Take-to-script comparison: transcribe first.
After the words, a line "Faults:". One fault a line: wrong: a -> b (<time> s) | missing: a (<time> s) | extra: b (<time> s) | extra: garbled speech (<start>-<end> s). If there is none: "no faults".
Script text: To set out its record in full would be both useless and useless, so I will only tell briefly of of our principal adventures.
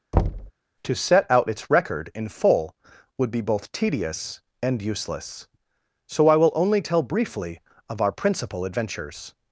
To set out its record in full would be both tedious and useless, so I will only tell briefly of our principal adventures.
Faults:
wrong: useless -> tedious (3.7 s)
missing: of (8.0 s)